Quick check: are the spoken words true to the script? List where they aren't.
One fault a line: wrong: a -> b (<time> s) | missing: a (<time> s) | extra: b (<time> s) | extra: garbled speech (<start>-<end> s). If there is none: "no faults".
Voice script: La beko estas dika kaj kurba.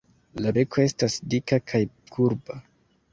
no faults